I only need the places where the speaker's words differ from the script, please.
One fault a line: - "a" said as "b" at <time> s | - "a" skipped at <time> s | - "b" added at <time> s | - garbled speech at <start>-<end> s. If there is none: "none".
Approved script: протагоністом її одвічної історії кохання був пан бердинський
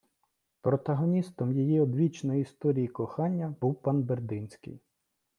none